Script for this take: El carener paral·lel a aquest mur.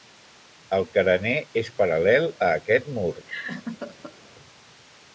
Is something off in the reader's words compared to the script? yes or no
yes